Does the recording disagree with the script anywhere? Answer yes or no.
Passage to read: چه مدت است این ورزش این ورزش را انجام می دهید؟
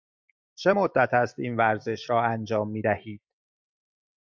yes